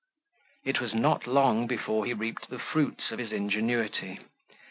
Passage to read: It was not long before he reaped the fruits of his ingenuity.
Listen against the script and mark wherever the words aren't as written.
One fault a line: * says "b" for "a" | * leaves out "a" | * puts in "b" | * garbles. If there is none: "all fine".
all fine